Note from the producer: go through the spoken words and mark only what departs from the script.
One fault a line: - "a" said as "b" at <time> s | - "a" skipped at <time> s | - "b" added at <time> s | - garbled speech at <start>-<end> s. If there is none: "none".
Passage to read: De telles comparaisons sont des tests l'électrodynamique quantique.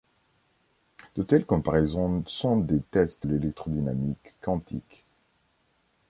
none